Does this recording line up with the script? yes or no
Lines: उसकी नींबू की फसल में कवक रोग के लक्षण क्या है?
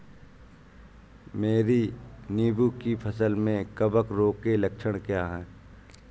no